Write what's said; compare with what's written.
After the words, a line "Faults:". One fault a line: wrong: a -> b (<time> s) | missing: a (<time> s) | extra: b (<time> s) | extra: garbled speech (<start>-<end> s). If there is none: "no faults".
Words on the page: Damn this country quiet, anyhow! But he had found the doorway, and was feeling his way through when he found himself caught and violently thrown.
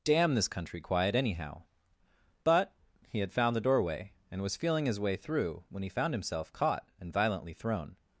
Damn this country quiet, anyhow! But he had found the doorway, and was feeling his way through when he found himself caught and violently thrown.
Faults:
no faults